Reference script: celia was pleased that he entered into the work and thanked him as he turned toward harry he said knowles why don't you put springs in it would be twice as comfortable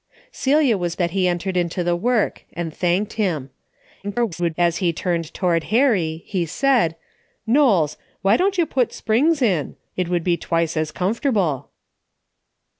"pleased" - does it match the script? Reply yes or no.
no